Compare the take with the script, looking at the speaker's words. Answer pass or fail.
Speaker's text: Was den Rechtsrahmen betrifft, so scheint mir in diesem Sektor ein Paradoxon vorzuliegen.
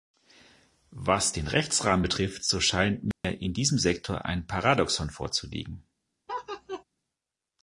pass